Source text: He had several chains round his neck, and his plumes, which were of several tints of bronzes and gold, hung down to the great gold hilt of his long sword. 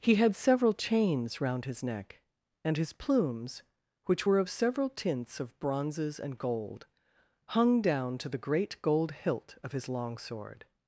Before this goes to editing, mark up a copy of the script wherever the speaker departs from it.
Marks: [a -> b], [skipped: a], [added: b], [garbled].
He had several chains round his neck, and his plumes, which were of several tints of bronzes and gold, hung down to the great gold hilt of his long sword.